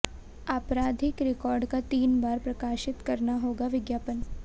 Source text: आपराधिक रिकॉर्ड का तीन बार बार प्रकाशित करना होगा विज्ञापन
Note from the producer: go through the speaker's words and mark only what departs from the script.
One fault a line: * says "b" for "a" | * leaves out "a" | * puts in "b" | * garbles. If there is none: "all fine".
* leaves out "बार"